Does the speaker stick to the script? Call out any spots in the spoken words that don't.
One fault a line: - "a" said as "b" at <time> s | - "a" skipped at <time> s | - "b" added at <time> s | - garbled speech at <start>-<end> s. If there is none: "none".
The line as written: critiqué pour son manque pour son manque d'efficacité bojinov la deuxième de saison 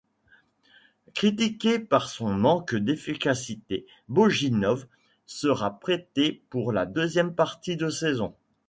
- "pour son manque d'efficacité bojinov" said as "d'efficacité bojinov sera prêté pour" at 2.7 s
- "partie" added at 7.3 s